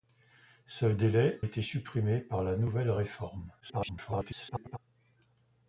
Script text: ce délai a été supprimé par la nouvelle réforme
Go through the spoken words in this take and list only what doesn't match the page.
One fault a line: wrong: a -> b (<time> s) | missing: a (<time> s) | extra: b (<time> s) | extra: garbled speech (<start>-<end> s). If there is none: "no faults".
missing: a (1.4 s)
extra: garbled speech (3.6-4.8 s)